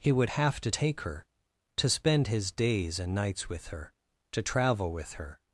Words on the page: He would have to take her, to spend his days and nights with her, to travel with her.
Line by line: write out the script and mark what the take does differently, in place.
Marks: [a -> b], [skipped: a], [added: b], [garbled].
He would have to take her, to spend his days and nights with her, to travel with her.